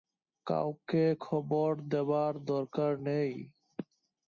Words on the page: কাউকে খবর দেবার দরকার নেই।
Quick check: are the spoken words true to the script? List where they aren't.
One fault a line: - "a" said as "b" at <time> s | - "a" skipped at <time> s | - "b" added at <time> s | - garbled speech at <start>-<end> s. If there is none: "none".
none